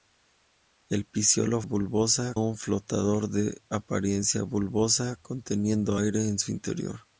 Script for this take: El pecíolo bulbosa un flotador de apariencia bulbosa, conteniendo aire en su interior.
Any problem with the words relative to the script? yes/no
no